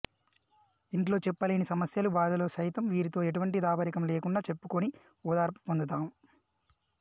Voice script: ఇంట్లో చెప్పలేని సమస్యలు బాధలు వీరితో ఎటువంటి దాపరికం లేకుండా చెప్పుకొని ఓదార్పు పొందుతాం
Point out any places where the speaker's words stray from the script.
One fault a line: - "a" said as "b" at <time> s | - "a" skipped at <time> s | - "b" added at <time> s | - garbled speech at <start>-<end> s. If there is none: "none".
- "సైతం" added at 2.5 s